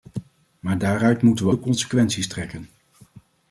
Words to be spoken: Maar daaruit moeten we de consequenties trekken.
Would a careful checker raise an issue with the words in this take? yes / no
no